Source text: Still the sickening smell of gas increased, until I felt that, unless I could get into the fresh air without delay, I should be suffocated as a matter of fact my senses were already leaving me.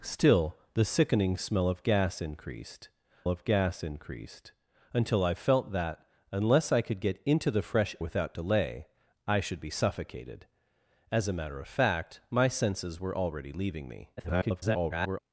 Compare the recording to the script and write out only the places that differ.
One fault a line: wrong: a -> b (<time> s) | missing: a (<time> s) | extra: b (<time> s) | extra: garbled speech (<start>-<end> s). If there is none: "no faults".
extra: of gas increased (3.3 s)
missing: air (8.0 s)
extra: garbled speech (14.2-15.2 s)